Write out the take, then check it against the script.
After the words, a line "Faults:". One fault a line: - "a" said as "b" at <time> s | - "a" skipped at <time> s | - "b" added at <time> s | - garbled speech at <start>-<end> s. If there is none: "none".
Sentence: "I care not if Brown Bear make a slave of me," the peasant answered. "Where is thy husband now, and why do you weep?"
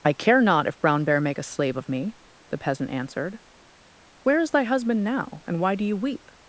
"I care not if Brown Bear make a slave of me," the peasant answered. "Where is thy husband now, and why do you weep?"
Faults:
none